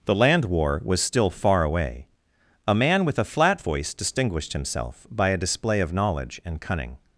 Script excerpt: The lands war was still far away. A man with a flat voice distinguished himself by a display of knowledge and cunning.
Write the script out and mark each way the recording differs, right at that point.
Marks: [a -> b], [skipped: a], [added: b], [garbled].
The [lands -> land] war was still far away. A man with a flat voice distinguished himself by a display of knowledge and cunning.